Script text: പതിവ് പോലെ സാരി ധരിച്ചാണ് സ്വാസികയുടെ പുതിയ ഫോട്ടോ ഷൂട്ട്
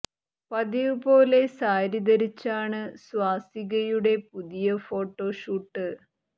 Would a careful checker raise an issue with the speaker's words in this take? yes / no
no